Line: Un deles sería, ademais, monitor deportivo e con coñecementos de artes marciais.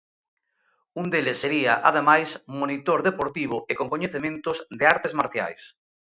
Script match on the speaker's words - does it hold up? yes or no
yes